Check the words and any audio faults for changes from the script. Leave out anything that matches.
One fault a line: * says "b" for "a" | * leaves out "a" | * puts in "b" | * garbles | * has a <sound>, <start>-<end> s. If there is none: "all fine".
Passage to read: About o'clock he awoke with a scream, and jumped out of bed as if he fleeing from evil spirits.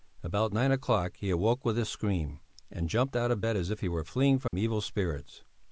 * puts in "nine"
* puts in "were"
* has a dropout, 4.5-4.5 s